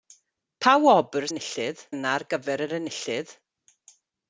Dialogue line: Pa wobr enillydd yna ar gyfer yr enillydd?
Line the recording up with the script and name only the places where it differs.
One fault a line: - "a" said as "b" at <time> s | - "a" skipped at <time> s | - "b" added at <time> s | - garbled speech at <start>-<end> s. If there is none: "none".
none